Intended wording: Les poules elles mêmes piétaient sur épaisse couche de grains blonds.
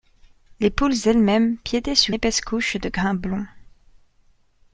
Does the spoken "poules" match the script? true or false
true